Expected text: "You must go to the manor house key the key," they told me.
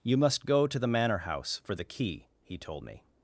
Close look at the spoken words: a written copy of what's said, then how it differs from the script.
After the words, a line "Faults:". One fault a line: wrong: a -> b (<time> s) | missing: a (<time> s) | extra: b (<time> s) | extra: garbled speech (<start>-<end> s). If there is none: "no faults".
"You must go to the manor house for the key," he told me.
Faults:
wrong: key -> for (1.6 s)
wrong: they -> he (2.4 s)